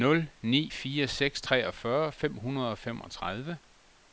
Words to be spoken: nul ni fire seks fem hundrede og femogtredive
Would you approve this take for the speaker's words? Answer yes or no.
no